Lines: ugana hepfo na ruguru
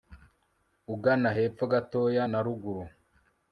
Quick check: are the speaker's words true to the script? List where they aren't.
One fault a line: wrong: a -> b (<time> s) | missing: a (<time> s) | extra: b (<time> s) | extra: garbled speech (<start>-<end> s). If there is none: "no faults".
extra: gatoya (1.7 s)